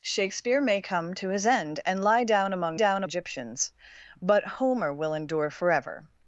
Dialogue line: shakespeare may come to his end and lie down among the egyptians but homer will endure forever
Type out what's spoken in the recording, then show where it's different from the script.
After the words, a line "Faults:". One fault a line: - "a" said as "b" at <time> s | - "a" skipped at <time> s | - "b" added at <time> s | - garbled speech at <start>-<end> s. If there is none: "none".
shakespeare may come to his end and lie down among down egyptians but homer will endure forever
Faults:
- "the" said as "down" at 2.7 s